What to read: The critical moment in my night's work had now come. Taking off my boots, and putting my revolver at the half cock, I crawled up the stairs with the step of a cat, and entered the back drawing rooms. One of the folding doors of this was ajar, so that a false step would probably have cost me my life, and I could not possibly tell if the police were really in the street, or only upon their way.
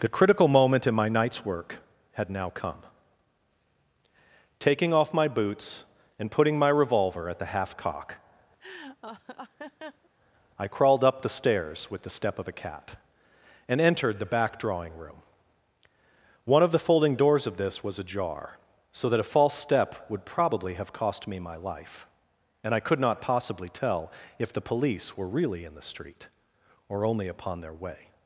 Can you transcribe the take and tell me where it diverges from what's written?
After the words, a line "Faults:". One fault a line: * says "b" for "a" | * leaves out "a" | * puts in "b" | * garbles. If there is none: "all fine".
The critical moment in my night's work had now come. Taking off my boots, and putting my revolver at the half cock, I crawled up the stairs with the step of a cat, and entered the back drawing room. One of the folding doors of this was ajar, so that a false step would probably have cost me my life, and I could not possibly tell if the police were really in the street, or only upon their way.
Faults:
* says "room" for "rooms"